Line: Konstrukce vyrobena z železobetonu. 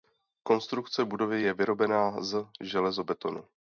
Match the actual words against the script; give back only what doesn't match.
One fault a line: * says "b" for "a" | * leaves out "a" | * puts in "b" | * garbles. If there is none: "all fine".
* puts in "budovy je"